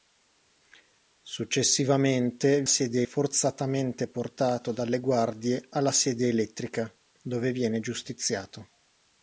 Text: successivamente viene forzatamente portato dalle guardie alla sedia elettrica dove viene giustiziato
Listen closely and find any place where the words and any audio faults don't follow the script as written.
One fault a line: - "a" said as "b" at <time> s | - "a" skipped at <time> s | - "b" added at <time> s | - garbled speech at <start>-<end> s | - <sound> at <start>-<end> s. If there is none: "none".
- "viene" said as "sedia" at 2.7 s